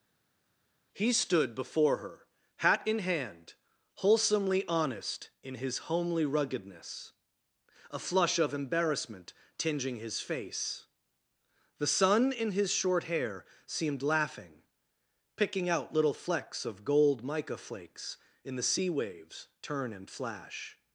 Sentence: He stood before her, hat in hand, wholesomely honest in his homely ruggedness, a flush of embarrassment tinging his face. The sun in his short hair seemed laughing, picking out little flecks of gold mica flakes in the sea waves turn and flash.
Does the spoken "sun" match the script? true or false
true